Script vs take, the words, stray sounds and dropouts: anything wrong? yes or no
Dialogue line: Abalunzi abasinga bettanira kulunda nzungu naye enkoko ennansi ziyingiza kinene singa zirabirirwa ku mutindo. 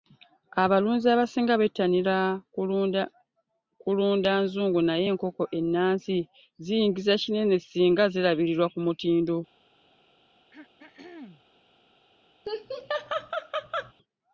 yes